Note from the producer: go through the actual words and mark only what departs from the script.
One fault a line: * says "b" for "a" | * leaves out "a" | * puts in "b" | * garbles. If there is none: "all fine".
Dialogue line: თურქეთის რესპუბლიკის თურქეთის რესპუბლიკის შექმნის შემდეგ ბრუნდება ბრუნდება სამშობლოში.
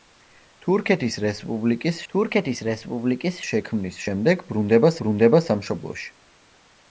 all fine